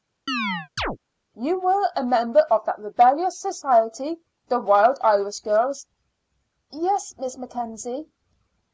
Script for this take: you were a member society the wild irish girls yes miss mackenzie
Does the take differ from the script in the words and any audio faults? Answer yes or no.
yes